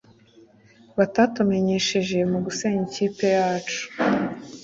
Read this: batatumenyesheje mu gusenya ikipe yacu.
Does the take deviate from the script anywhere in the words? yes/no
no